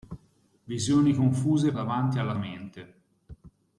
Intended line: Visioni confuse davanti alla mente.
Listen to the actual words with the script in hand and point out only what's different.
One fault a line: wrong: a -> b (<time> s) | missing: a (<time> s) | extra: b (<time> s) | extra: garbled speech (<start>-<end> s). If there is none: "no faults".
no faults